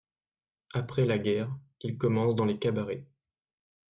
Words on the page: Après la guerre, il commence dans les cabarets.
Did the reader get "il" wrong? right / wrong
right